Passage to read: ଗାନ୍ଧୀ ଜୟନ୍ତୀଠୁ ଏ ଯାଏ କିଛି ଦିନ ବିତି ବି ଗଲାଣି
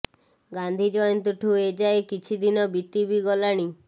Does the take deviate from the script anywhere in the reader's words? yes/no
no